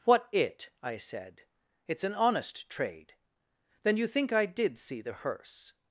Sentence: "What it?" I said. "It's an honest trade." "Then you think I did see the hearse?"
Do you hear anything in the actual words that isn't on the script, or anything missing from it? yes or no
no